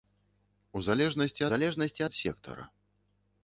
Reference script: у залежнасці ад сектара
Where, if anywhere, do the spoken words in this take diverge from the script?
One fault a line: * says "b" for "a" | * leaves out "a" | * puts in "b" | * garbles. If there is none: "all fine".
* puts in "залежнасці"